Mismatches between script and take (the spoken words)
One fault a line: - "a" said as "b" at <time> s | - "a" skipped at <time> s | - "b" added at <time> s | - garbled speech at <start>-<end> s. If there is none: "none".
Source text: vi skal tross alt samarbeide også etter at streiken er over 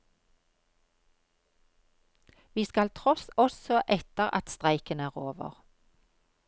- "alt samarbeide" skipped at 3.3 s